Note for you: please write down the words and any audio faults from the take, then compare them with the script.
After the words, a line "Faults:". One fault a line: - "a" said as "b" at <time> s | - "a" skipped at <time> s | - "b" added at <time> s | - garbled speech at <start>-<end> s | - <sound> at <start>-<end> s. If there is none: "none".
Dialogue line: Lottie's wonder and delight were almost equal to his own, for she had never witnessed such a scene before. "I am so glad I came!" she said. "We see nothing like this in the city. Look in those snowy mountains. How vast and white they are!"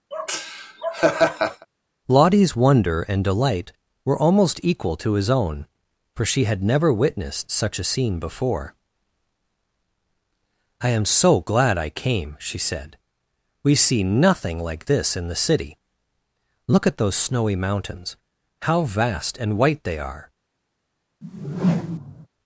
Lottie's wonder and delight were almost equal to his own, for she had never witnessed such a scene before. "I am so glad I came!" she said. "We see nothing like this in the city. Look at those snowy mountains. How vast and white they are!"
Faults:
- laugh at 0.1-1.7 s
- "in" said as "at" at 16.9 s
- whoosh at 21.2-22.3 s